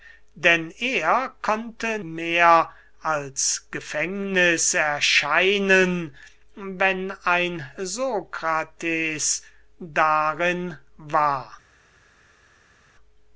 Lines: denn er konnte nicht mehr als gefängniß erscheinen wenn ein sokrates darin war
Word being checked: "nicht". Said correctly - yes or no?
no